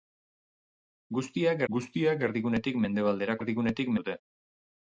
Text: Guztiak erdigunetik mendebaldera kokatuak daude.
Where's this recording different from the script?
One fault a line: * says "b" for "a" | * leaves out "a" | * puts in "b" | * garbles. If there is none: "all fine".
* puts in "guztiak"
* says "erdigunetik" for "kokatuak"